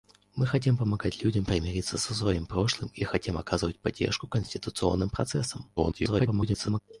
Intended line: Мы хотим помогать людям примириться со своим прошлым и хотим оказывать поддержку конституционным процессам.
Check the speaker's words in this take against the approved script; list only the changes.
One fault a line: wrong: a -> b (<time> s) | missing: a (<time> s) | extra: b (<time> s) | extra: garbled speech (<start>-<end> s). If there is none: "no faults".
extra: garbled speech (5.8-6.8 s)